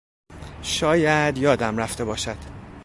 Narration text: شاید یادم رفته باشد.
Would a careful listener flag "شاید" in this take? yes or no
no